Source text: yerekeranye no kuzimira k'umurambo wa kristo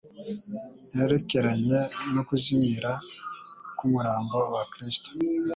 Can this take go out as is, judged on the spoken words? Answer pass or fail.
pass